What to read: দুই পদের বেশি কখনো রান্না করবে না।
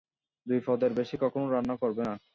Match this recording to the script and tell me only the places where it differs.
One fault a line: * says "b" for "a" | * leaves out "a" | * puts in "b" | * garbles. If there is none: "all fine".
all fine